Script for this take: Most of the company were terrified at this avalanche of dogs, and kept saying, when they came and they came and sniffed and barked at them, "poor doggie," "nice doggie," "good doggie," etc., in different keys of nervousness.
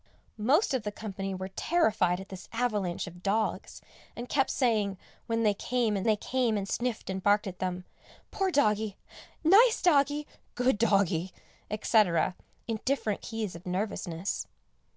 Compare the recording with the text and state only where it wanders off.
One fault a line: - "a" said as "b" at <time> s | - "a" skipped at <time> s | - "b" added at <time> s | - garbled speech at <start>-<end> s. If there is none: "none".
none